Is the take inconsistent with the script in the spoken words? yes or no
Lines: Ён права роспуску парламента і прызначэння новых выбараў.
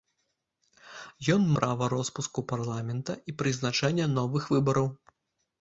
no